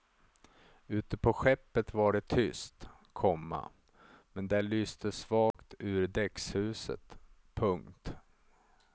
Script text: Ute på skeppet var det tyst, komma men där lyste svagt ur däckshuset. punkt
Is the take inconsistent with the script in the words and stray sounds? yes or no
yes